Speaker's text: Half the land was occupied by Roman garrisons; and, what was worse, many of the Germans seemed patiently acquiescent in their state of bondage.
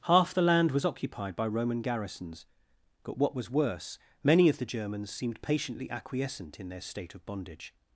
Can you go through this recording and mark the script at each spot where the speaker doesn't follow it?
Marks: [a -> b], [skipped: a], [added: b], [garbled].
Half the land was occupied by Roman garrisons; [and, -> but] what was worse, many of the Germans seemed patiently acquiescent in their state of bondage.